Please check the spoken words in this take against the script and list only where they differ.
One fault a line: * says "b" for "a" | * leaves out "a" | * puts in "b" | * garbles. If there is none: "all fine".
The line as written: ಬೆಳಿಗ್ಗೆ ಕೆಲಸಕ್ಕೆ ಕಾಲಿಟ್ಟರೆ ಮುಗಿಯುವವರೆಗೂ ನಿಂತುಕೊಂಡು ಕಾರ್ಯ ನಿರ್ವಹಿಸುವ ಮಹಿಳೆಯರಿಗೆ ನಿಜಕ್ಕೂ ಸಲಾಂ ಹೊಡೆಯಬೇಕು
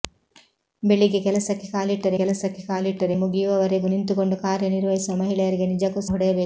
* puts in "ಕೆಲಸಕ್ಕೆ ಕಾಲಿಟ್ಟರೆ"
* leaves out "ಸಲಾಂ"